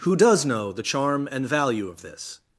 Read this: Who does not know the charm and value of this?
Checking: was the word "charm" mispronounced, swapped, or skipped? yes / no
no